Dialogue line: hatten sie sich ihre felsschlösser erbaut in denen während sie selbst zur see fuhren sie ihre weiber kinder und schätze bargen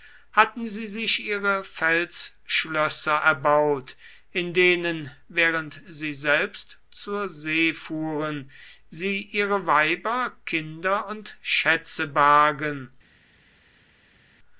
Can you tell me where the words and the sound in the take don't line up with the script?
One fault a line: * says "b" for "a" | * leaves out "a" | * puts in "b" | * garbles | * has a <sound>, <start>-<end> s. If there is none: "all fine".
all fine